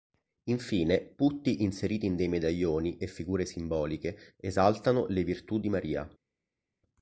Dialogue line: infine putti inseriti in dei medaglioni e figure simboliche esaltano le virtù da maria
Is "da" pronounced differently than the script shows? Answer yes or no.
yes